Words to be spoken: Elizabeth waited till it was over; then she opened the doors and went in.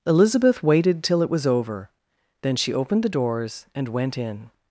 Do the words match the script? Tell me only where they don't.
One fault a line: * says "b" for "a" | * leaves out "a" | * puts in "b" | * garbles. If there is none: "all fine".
all fine